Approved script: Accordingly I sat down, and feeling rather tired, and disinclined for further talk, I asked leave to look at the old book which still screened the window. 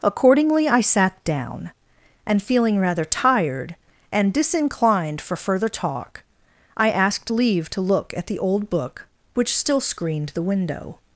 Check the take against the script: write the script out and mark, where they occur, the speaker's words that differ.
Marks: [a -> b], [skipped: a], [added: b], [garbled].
Accordingly I sat down, and feeling rather tired, and disinclined for further talk, I asked leave to look at the old book which still screened the window.